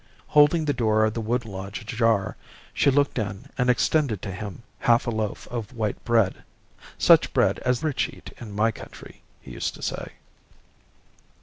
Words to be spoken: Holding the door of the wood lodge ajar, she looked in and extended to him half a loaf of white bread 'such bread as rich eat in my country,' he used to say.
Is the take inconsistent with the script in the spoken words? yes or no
no